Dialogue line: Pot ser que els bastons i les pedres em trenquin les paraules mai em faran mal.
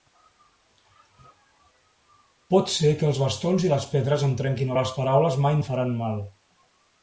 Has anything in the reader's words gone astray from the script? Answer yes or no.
no